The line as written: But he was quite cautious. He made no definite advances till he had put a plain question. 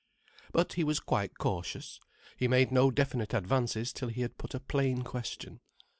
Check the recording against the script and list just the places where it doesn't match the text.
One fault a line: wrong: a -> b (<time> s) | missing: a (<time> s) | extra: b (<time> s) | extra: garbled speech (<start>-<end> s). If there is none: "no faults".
no faults